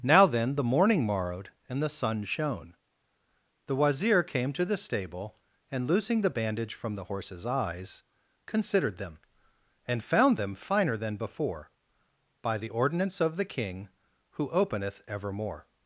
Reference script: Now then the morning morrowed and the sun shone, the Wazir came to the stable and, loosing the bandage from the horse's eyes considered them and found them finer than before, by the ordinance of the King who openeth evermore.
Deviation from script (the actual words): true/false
false